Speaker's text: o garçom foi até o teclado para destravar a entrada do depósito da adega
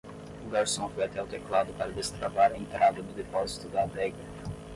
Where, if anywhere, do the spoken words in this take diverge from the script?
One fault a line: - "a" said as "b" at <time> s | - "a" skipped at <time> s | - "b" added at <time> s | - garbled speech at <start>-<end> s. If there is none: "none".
none